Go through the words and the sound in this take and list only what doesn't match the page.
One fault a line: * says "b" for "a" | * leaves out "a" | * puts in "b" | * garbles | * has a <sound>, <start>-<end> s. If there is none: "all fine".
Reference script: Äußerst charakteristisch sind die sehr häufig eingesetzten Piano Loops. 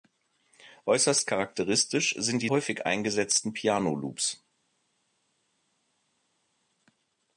* leaves out "sehr"